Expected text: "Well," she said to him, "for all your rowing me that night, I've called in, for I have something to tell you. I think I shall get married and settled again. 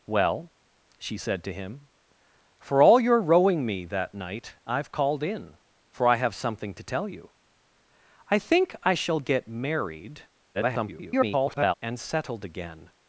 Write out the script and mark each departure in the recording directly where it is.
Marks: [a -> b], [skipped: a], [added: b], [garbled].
"Well," she said to him, "for all your rowing me that night, I've called in, for I have something to tell you. I think I shall get married [garbled] and settled again.